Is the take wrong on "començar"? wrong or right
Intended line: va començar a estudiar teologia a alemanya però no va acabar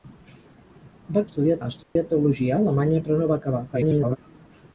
wrong